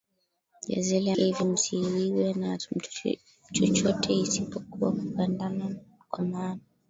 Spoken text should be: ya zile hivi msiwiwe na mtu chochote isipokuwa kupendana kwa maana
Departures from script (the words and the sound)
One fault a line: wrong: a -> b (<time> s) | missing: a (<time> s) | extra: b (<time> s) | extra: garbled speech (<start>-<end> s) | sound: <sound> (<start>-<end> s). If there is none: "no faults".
no faults